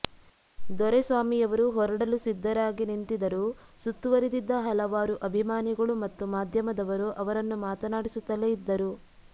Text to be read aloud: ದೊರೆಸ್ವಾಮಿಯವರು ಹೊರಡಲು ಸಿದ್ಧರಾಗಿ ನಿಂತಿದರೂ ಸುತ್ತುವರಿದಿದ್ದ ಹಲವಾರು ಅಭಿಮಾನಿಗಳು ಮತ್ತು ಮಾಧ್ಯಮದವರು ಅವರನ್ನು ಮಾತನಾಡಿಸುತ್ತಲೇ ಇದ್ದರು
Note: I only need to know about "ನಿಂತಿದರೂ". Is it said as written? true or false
true